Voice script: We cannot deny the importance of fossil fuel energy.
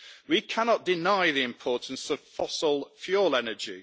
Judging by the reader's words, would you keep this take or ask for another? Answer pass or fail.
pass